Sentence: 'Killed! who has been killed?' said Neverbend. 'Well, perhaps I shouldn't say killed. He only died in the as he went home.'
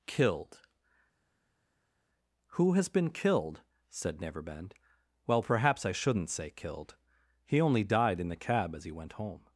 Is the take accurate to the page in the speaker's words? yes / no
no